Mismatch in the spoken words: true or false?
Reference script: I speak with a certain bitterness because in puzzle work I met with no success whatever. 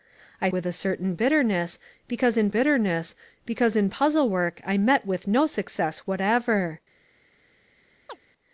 true